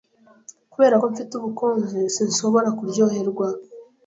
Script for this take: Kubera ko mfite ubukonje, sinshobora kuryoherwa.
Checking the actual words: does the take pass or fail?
pass